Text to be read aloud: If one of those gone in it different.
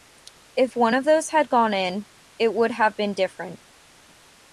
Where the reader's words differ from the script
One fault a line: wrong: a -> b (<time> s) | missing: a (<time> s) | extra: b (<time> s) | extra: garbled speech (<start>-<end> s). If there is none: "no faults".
extra: had (1.3 s)
extra: would have been (2.5 s)